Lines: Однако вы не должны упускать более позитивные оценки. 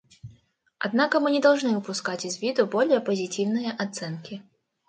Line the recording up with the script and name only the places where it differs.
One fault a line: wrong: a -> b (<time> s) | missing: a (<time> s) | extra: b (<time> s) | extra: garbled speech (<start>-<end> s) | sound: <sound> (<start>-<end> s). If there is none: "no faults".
wrong: вы -> мы (1.2 s)
extra: из виду (2.2 s)